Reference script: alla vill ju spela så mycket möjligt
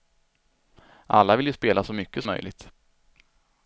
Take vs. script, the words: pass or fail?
pass